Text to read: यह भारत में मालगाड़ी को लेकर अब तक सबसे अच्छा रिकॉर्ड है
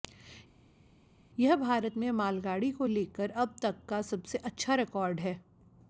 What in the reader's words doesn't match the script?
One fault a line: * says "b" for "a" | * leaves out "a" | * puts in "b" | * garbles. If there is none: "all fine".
* puts in "का"